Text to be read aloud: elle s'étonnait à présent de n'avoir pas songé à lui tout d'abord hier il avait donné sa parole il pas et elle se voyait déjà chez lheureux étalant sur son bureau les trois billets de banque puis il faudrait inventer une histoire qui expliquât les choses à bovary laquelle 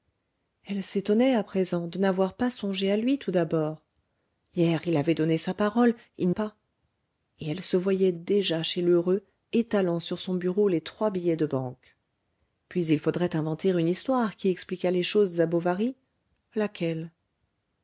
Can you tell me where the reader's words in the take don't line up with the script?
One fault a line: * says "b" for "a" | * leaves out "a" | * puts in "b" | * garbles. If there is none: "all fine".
all fine